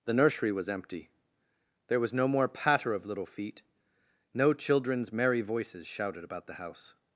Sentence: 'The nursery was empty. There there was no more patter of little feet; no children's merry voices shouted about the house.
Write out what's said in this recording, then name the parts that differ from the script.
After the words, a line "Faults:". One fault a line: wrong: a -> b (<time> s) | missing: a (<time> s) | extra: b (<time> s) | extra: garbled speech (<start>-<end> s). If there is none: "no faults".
'The nursery was empty. There was no more patter of little feet; no children's merry voices shouted about the house.
Faults:
missing: there (2.0 s)